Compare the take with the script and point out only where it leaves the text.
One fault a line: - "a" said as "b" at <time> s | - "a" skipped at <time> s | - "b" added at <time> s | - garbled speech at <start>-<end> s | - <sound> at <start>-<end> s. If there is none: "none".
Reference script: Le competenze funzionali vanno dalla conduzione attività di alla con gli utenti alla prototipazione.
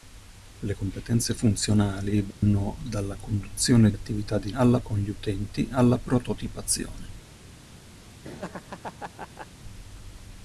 - dropout at 2.3-2.4 s
- laugh at 8.2-9.5 s